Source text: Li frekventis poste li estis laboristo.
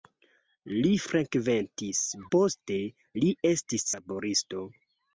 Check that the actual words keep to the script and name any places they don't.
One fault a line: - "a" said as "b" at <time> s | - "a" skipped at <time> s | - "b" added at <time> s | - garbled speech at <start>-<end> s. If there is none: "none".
none